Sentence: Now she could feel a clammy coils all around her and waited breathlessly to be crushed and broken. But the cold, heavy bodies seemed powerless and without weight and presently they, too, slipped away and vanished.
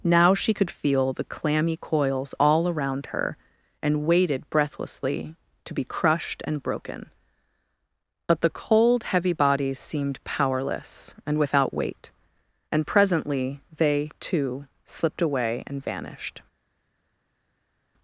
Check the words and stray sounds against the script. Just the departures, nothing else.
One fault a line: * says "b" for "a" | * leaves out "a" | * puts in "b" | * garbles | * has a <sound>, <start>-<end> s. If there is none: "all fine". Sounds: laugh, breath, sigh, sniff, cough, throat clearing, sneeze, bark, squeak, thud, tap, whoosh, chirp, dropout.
* says "the" for "a"